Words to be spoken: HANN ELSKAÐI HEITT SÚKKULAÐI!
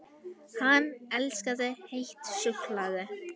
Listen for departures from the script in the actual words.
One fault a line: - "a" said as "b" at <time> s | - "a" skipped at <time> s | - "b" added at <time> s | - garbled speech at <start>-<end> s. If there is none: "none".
none